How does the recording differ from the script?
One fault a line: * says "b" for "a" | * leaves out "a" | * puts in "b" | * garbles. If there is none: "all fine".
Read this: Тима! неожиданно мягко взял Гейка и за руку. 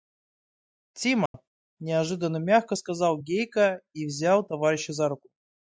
* says "сказал" for "взял"
* puts in "взял товарища"